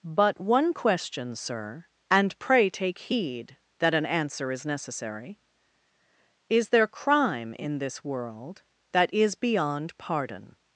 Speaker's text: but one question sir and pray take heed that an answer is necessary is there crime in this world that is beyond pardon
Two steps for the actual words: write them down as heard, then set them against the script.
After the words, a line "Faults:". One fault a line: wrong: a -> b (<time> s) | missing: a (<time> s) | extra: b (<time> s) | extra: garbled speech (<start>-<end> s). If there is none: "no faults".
but one question sir and pray take heed that an answer is necessary is there crime in this world that is beyond pardon
Faults:
no faults